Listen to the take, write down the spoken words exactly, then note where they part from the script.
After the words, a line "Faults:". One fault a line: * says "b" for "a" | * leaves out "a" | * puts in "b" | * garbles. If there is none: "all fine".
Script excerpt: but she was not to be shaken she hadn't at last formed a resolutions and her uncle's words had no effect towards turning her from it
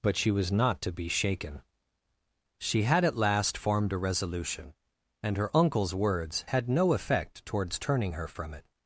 but she was not to be shaken she had at last formed a resolution and her uncle's words had no effect towards turning her from it
Faults:
* says "had" for "hadn't"
* says "resolution" for "resolutions"